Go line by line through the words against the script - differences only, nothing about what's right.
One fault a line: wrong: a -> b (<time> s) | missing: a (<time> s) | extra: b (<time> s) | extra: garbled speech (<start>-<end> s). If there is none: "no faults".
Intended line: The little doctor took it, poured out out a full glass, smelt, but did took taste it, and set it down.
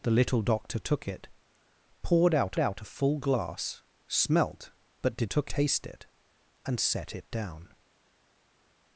no faults